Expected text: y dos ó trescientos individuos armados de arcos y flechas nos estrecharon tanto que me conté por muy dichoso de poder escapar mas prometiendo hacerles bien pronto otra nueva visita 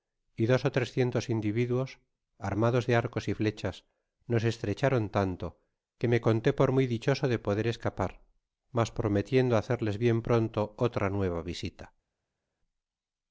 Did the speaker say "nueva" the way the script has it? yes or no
yes